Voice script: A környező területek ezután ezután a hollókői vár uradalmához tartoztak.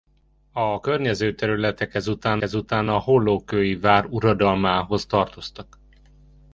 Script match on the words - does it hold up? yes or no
yes